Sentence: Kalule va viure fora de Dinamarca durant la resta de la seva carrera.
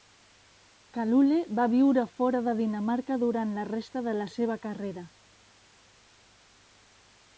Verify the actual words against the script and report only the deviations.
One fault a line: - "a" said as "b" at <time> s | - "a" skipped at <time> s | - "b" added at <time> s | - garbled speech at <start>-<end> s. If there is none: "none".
none